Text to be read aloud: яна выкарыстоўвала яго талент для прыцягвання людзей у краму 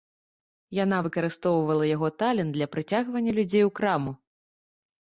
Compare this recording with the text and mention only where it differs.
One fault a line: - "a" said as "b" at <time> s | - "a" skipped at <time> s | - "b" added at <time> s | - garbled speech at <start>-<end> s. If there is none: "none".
none